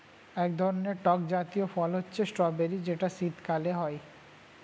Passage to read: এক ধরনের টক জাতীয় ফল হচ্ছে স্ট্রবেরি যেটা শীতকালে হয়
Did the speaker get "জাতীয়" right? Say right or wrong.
right